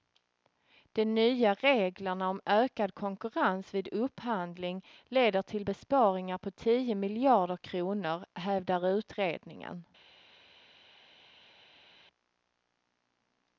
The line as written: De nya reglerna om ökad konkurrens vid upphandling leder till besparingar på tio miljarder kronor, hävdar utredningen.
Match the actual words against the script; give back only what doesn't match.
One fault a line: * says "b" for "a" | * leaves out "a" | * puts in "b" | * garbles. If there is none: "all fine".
all fine